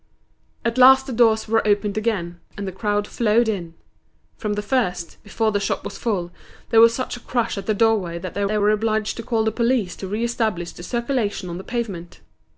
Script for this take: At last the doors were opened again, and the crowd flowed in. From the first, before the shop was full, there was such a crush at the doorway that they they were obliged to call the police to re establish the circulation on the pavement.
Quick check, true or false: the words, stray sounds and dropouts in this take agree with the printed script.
true